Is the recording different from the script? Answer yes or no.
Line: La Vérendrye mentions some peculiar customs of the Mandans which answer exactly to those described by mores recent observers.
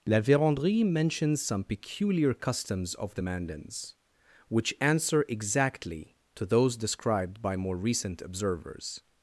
yes